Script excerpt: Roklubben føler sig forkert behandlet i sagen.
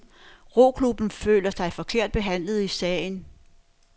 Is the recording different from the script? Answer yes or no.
no